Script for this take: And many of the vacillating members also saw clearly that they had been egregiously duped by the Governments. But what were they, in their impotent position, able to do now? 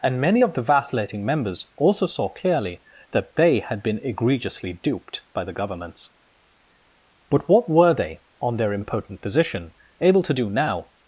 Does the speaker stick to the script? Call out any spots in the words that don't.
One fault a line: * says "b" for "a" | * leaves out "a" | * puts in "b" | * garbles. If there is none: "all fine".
* says "on" for "in"